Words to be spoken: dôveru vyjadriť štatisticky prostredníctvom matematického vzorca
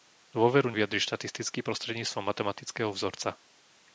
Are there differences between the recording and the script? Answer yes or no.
no